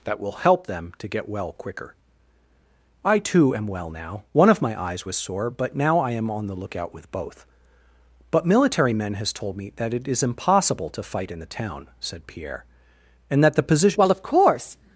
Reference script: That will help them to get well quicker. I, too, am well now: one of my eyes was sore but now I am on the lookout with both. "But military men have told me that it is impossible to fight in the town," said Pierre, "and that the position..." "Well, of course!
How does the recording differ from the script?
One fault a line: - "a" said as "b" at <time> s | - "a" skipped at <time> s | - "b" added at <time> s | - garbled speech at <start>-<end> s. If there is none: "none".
- "have" said as "has" at 9.1 s